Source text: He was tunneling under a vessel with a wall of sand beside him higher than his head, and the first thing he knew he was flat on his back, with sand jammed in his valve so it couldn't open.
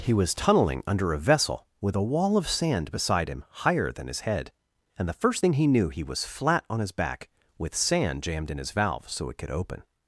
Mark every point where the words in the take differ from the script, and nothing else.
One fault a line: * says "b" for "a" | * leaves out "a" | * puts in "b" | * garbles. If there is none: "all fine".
* says "could" for "couldn't"